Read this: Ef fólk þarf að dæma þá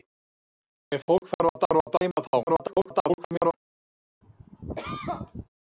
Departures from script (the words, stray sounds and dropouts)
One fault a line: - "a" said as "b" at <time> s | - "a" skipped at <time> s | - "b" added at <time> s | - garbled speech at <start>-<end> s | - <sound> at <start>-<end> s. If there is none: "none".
- "þarf að" added at 1.6 s
- garbled speech at 2.5-3.5 s
- cough at 4.2-5.5 s